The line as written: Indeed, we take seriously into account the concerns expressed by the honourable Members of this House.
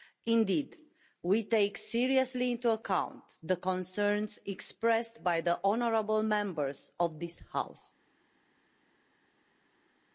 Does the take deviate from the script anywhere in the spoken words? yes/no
no